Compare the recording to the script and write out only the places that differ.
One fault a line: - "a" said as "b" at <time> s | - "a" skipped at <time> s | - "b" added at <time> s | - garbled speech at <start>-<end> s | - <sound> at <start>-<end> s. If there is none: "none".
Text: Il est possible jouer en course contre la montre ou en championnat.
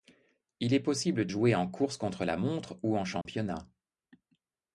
- dropout at 3.2-3.3 s